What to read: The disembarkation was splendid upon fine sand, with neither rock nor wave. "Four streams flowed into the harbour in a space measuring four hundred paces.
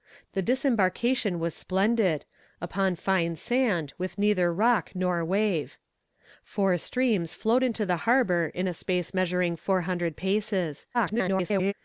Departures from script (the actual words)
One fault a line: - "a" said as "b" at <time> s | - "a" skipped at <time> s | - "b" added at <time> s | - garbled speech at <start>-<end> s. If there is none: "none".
- garbled speech at 10.9-11.7 s